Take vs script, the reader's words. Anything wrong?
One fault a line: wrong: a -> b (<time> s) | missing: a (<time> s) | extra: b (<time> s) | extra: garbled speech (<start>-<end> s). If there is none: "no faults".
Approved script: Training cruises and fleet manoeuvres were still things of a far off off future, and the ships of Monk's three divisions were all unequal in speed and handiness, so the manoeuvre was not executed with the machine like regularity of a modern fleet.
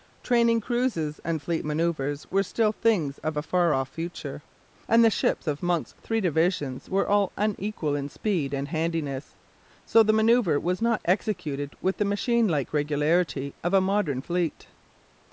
missing: off (3.9 s)